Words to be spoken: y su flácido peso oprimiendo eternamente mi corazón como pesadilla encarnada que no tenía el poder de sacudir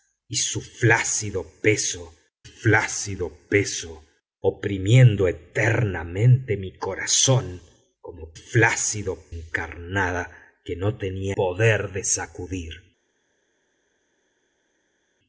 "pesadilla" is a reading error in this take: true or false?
true